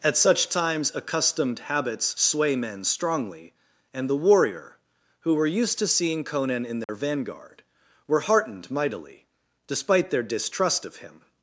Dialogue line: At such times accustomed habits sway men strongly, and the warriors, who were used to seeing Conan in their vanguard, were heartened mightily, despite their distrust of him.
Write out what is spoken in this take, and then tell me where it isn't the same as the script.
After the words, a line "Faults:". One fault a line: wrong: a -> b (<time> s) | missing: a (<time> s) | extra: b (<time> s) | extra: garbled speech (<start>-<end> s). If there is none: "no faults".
At such times accustomed habits sway men strongly, and the warrior, who were used to seeing Conan in their vanguard, were heartened mightily, despite their distrust of him.
Faults:
wrong: warriors -> warrior (4.1 s)